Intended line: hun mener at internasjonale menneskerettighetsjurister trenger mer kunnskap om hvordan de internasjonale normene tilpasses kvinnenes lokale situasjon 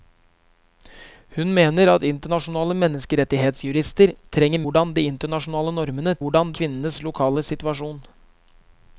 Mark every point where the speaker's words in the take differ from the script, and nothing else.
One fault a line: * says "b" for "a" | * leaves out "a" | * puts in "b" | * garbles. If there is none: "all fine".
* leaves out "mer kunnskap om"
* says "hvordan" for "tilpasses"